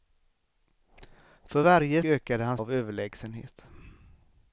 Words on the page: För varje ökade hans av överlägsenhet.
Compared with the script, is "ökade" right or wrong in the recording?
right